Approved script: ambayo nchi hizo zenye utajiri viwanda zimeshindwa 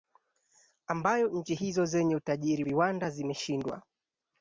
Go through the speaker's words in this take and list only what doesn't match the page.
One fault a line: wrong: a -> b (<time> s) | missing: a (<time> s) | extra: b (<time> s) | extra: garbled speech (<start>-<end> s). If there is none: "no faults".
no faults